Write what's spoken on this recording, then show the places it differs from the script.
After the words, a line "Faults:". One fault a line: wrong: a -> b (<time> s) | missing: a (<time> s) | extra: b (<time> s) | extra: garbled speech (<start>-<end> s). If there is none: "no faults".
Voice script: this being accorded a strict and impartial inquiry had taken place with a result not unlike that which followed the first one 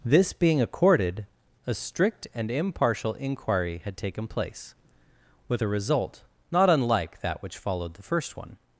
this being accorded a strict and impartial inquiry had taken place with a result not unlike that which followed the first one
Faults:
no faults